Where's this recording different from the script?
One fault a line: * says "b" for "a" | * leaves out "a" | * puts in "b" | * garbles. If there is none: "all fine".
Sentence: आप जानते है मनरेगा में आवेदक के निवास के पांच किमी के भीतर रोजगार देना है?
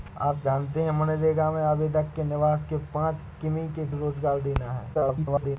* leaves out "भीतर"
* garbles